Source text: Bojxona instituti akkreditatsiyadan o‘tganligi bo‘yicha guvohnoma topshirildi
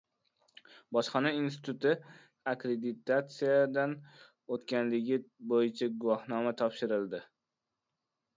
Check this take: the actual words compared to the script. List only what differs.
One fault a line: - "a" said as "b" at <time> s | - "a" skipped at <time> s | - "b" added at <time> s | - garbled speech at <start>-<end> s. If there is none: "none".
none